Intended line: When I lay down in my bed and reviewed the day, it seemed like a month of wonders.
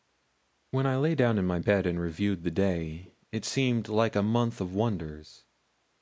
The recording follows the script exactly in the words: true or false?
true